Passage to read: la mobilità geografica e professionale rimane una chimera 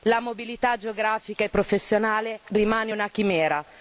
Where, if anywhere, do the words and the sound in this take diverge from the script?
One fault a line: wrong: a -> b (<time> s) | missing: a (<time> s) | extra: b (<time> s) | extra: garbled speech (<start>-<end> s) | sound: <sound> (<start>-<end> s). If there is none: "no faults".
no faults